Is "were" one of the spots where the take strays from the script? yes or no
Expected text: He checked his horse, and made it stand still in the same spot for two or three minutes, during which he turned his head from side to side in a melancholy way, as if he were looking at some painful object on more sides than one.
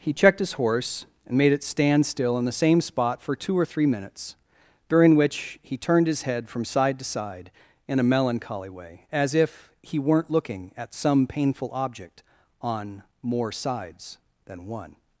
yes